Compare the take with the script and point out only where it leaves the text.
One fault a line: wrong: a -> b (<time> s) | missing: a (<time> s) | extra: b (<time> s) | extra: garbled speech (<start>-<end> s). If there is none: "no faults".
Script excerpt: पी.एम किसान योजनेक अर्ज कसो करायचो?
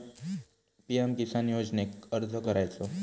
missing: कसो (2.4 s)